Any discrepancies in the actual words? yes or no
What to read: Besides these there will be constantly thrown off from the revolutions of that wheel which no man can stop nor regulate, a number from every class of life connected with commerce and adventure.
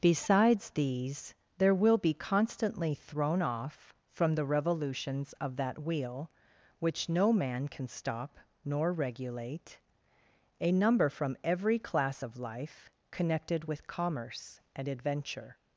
no